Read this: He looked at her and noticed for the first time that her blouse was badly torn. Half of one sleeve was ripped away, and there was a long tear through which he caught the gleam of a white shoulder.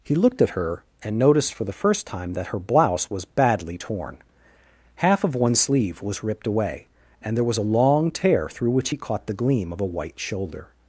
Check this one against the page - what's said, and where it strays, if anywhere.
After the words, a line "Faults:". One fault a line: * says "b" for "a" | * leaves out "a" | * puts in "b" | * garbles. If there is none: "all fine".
He looked at her and noticed for the first time that her blouse was badly torn. Half of one sleeve was ripped away, and there was a long tear through which he caught the gleam of a white shoulder.
Faults:
all fine